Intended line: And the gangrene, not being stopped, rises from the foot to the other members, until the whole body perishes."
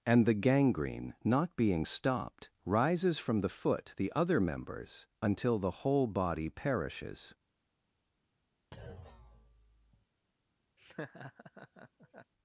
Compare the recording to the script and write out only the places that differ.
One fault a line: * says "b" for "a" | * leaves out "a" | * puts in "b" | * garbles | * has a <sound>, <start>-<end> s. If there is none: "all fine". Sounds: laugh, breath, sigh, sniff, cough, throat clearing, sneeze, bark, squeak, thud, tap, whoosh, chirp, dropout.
* leaves out "to"
* has a thud, 8.7-10.1 s
* has a laugh, 10.8-12.3 s